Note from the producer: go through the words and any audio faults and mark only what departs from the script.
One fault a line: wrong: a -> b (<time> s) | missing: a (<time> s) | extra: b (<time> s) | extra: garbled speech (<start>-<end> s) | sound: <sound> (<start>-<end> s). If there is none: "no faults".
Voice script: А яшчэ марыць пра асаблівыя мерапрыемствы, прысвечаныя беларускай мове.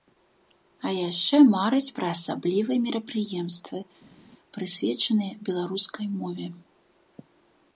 no faults